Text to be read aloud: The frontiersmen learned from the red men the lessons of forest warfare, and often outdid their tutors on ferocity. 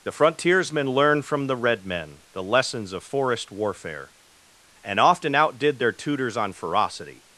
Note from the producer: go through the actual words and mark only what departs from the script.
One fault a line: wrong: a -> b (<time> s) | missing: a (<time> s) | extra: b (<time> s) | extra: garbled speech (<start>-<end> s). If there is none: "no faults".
no faults